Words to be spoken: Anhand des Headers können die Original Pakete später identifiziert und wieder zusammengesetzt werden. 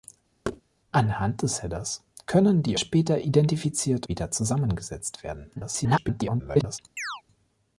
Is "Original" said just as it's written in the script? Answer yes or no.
no